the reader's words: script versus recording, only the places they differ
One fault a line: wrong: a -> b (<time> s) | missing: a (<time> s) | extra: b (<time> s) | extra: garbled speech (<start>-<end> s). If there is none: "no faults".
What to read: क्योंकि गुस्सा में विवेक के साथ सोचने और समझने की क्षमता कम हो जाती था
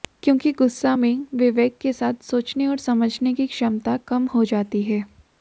wrong: था -> है (4.8 s)